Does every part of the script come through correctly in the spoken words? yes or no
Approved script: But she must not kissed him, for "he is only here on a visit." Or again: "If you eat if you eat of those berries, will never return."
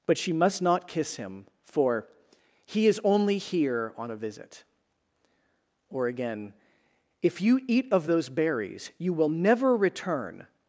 no